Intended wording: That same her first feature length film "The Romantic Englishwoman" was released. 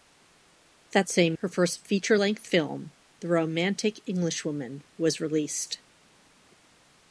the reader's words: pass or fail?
pass